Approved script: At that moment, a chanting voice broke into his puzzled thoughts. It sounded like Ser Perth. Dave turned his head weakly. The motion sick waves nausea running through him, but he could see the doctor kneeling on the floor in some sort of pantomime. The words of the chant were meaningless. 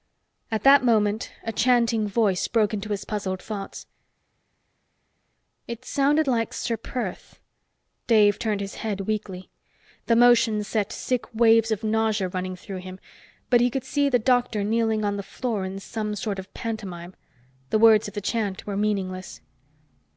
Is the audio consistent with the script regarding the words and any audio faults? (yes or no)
no